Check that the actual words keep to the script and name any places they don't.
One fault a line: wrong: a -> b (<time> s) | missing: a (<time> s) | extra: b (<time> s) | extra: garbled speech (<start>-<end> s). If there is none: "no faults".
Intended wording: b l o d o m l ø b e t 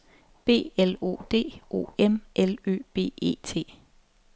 no faults